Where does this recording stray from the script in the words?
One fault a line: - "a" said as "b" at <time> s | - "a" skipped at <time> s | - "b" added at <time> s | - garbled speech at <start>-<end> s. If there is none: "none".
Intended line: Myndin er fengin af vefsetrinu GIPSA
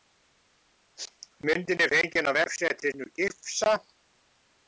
none